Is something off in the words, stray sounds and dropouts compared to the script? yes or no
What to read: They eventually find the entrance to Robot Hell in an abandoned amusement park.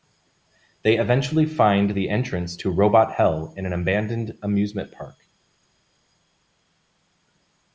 no